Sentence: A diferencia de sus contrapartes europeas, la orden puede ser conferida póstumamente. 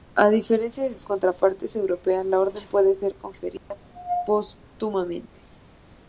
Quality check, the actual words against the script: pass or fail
pass